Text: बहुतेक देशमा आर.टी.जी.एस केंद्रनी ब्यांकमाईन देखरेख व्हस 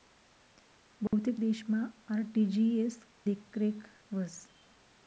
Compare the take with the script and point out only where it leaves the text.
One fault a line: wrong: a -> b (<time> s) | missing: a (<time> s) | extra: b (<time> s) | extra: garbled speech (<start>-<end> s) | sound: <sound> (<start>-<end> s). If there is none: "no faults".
sound: dropout (1.1-1.1 s)
missing: केंद्रनी ब्यांकमाईन (3.0 s)